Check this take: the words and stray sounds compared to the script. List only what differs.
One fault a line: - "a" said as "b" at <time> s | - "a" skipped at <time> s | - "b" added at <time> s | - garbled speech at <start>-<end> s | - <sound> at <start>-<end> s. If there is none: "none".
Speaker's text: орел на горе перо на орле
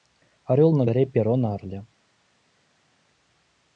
none